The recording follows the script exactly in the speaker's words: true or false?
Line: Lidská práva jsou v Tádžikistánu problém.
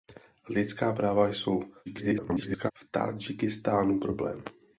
false